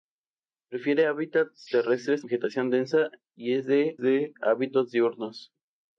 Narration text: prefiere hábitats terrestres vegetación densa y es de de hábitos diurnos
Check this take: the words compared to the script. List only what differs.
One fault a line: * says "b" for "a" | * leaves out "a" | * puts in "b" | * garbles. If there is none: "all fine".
all fine